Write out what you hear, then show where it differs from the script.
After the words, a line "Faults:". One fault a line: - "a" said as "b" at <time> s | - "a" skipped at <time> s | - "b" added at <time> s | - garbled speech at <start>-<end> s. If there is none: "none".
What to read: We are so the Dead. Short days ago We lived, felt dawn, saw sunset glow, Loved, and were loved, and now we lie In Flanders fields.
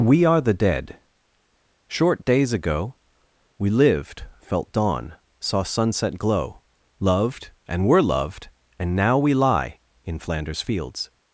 We are the Dead. Short days ago We lived, felt dawn, saw sunset glow, Loved, and were loved, and now we lie In Flanders fields.
Faults:
- "so" skipped at 0.4 s